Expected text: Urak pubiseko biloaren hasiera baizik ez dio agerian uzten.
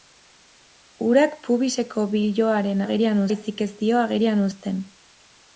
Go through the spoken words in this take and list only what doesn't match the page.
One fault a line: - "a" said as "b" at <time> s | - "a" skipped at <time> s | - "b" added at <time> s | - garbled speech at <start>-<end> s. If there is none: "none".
- "hasiera" said as "agerian" at 2.8 s